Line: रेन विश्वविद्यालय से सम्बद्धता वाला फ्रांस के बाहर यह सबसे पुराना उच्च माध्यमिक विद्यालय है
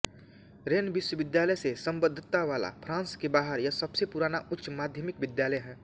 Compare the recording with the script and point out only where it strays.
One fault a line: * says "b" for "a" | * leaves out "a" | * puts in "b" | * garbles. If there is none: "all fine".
all fine